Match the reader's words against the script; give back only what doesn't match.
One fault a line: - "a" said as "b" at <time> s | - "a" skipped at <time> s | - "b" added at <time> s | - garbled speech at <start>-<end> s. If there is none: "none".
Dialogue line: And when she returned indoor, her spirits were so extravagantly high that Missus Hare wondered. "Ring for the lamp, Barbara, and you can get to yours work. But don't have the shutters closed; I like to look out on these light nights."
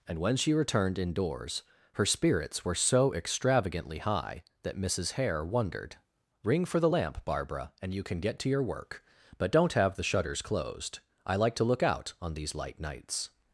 - "indoor" said as "indoors" at 1.0 s
- "yours" said as "your" at 8.5 s